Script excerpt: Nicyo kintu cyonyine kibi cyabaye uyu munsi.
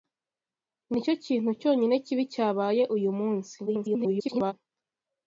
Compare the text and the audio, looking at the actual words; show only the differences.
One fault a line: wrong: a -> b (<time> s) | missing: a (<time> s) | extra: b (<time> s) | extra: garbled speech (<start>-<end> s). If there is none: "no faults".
extra: garbled speech (3.7-4.5 s)